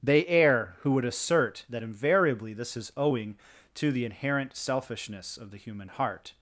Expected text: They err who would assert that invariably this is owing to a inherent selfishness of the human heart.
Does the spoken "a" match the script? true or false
false